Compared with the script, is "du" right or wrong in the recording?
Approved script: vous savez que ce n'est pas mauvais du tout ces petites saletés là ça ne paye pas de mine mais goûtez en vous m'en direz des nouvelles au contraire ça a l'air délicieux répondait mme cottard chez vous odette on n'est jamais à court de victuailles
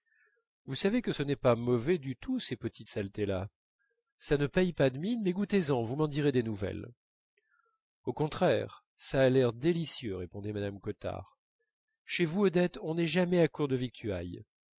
right